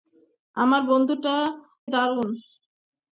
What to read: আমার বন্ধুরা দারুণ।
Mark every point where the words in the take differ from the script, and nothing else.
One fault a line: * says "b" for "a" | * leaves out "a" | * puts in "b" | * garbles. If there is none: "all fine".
all fine